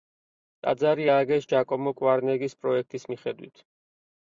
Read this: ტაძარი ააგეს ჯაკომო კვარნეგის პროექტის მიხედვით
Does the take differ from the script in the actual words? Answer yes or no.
no